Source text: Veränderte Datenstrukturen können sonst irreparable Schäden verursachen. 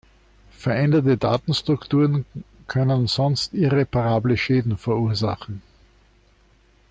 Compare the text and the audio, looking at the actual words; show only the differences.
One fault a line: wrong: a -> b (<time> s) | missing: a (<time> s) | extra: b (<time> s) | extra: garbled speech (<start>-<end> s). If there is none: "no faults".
no faults